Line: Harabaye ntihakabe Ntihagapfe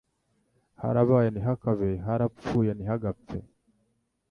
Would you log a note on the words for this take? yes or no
yes